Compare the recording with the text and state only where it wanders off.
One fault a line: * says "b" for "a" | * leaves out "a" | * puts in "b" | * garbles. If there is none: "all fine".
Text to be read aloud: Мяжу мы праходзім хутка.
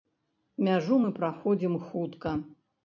all fine